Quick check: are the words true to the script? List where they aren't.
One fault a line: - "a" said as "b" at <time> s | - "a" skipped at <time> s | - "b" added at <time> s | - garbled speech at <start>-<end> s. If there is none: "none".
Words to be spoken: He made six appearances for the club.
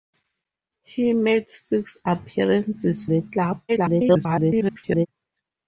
- "for" skipped at 3.0 s
- garbled speech at 3.7-5.1 s